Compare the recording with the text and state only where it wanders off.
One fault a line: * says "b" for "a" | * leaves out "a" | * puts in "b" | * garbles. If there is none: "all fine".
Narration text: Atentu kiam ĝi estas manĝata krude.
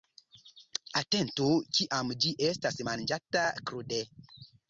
all fine